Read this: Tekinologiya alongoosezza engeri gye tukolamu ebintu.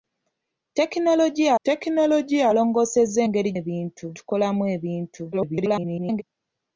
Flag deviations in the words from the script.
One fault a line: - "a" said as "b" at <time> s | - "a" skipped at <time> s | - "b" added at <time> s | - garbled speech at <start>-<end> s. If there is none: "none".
- "tekinologiya" added at 1.6 s
- "gye" said as "ebintu" at 3.6 s
- garbled speech at 5.3-6.2 s